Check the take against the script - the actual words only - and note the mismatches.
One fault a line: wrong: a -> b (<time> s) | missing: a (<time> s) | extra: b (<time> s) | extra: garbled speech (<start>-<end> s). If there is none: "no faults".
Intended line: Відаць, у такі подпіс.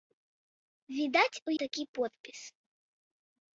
no faults